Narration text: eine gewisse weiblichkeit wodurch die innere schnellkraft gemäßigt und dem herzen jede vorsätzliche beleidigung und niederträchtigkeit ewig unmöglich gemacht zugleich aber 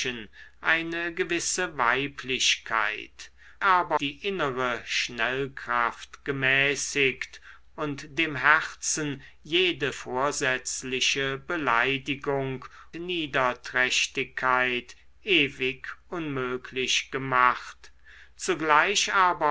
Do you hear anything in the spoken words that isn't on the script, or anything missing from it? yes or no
yes